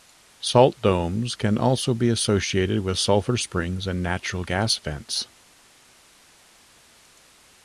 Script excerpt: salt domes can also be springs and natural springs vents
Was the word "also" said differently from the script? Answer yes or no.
no